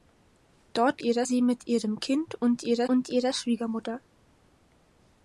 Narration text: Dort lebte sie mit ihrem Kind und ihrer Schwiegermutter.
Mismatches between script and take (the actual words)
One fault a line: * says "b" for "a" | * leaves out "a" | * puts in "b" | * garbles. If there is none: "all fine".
* says "ihrer" for "lebte"
* puts in "und ihrer"